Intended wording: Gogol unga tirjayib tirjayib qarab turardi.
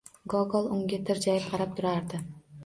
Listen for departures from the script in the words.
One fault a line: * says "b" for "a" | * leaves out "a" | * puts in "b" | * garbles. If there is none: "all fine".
* leaves out "tirjayib"